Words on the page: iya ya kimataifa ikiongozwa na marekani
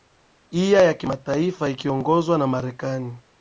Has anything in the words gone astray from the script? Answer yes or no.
no